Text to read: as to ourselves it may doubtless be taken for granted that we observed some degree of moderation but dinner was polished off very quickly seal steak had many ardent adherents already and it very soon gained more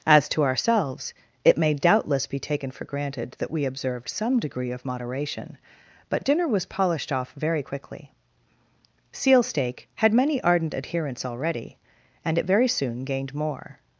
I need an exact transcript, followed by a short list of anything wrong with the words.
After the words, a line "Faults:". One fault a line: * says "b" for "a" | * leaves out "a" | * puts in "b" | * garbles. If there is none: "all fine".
as to ourselves it may doubtless be taken for granted that we observed some degree of moderation but dinner was polished off very quickly seal steak had many ardent adherents already and it very soon gained more
Faults:
all fine